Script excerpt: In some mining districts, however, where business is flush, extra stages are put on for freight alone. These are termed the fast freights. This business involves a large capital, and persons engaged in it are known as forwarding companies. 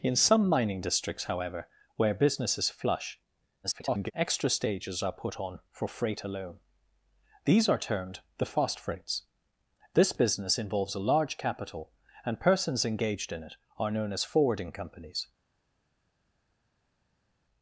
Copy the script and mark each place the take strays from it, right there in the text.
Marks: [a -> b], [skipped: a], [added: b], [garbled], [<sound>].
In some mining districts, however, where business is flush, [garbled] extra stages are put on for freight alone. These are termed the fast freights. This business involves a large capital, and persons engaged in it are known as forwarding companies.